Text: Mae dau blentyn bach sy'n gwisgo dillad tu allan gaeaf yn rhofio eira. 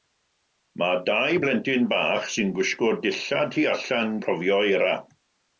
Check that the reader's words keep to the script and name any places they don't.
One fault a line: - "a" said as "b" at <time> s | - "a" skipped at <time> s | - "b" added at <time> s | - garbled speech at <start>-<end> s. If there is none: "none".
- "gaeaf yn" skipped at 4.2 s